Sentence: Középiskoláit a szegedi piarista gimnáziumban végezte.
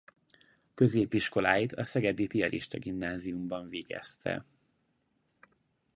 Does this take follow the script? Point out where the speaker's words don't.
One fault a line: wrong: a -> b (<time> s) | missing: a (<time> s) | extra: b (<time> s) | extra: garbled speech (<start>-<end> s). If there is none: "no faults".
no faults